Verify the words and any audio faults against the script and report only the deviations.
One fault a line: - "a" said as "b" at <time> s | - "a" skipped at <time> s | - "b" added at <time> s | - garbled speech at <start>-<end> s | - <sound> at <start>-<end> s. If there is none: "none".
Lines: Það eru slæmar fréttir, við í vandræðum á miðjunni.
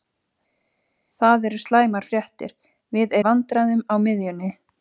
none